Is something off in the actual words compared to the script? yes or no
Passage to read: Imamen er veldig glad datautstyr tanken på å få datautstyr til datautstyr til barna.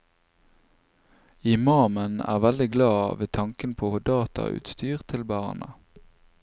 yes